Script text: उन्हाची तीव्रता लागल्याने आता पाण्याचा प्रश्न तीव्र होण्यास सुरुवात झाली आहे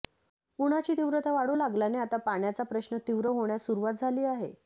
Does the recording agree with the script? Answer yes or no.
no